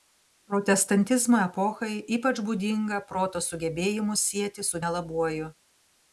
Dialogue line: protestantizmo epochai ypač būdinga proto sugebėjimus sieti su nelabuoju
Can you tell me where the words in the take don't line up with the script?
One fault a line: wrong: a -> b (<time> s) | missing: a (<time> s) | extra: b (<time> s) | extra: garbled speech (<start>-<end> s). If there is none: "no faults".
no faults